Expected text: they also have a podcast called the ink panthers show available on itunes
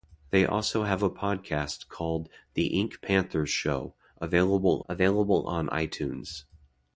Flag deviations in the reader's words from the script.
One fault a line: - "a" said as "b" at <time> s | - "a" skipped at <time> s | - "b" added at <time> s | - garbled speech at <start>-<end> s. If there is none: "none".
- "available" added at 4.9 s